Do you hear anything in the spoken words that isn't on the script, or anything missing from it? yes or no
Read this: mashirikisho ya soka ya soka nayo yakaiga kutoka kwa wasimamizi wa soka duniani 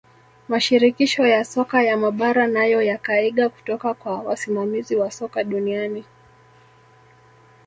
yes